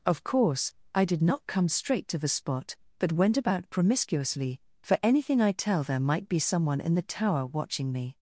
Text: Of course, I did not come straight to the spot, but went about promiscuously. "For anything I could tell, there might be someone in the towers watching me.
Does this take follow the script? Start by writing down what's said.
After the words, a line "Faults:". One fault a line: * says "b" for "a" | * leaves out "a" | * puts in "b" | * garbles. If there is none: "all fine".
Of course, I did not come straight to the spot, but went about promiscuously. "For anything I tell, there might be someone in the tower watching me.
Faults:
* leaves out "could"
* says "tower" for "towers"